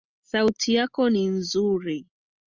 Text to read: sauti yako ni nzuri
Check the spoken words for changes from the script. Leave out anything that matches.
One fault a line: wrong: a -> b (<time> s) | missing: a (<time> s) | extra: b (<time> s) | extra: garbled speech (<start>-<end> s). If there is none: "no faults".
no faults